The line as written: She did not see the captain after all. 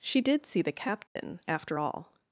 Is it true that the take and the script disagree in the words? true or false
true